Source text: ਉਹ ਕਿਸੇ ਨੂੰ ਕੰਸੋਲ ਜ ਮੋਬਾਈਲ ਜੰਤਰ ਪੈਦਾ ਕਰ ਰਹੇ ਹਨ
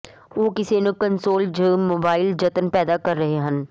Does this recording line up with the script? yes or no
yes